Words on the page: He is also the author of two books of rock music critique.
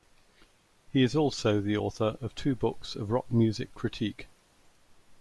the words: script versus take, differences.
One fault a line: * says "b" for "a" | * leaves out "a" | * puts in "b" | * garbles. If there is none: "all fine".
all fine